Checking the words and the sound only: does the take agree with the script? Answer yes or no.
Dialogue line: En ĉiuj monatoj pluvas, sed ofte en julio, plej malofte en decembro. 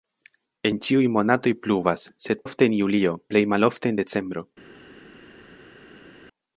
yes